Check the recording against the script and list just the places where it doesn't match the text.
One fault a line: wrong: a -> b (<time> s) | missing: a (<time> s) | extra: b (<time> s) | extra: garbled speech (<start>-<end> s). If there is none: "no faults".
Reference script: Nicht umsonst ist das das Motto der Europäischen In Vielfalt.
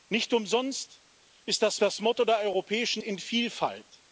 no faults